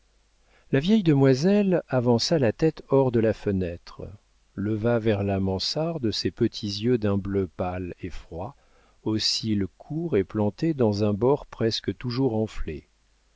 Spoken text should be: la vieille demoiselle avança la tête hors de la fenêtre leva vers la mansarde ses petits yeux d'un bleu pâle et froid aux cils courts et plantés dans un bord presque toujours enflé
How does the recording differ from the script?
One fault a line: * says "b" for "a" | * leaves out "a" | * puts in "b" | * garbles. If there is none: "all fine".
all fine